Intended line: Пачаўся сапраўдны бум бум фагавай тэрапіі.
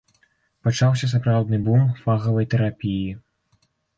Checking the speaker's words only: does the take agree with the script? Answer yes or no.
no